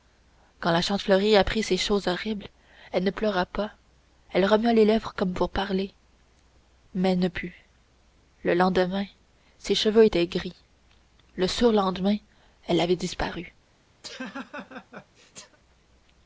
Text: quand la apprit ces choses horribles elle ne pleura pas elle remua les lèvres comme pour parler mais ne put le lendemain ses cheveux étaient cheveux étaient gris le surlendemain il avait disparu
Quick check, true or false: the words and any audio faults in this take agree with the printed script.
false